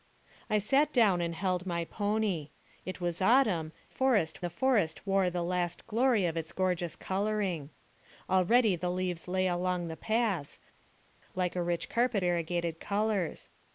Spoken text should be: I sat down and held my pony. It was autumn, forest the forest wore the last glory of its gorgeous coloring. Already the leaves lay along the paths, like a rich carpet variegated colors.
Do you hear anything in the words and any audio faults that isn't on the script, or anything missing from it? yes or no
no